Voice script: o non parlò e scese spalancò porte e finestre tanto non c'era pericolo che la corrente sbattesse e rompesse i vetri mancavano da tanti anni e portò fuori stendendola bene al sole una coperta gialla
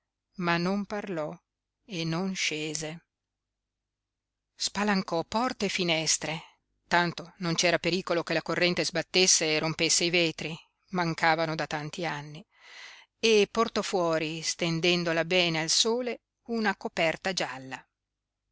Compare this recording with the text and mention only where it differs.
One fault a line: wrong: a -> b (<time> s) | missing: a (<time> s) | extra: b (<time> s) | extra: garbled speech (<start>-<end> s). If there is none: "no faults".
wrong: o -> ma (0.4 s)
extra: non (2.0 s)